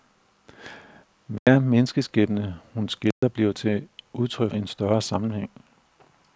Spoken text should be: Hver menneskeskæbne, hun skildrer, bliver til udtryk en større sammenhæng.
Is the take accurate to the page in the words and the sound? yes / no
no